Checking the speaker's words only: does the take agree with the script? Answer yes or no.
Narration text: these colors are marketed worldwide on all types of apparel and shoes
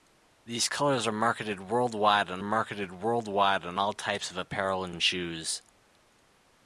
no